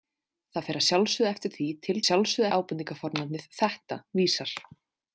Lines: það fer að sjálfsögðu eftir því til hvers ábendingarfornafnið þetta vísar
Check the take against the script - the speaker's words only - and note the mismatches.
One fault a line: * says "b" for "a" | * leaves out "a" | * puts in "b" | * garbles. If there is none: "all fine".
* says "sjálfsögðu" for "hvers"